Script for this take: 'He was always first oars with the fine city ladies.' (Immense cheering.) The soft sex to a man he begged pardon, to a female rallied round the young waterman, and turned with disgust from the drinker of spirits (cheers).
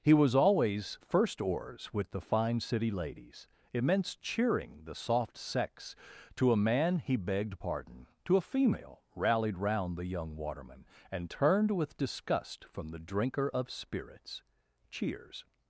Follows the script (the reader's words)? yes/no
yes